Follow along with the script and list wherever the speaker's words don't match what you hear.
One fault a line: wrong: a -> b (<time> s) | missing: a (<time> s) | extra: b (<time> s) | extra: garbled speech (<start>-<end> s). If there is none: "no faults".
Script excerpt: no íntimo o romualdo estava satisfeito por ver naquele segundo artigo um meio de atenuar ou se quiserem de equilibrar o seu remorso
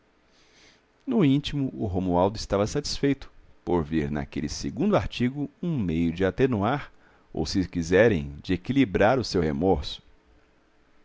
no faults